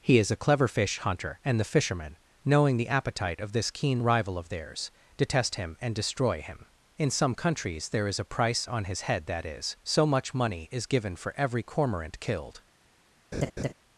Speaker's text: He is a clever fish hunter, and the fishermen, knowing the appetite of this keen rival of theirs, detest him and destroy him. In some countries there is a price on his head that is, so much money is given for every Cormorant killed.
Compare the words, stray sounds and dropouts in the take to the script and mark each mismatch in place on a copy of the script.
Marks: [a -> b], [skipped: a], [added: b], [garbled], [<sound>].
He is a clever fish hunter, and the fishermen, knowing the appetite of this keen rival of theirs, detest him and destroy him. In some countries there is a price on his head that is, so much money is given for every Cormorant killed. [laugh]